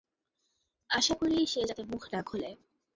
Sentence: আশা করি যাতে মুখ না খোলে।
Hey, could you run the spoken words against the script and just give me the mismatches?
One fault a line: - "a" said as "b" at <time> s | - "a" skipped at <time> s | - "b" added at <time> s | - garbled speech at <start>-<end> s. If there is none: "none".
- "সে" added at 1.5 s